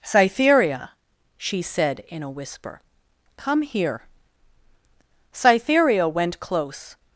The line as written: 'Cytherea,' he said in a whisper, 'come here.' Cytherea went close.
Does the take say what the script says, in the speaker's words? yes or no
no